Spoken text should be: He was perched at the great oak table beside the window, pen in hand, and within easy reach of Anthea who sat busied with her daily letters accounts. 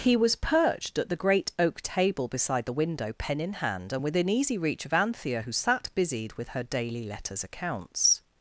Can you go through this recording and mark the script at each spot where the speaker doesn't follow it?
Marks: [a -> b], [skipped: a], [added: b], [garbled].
He was perched at the great oak table beside the window, pen in hand, and within easy reach of Anthea who sat busied with her daily letters accounts.